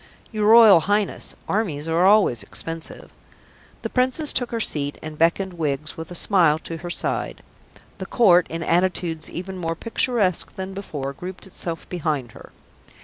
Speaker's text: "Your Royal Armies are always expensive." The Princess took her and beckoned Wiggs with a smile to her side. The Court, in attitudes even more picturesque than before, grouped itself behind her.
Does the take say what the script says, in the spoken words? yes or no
no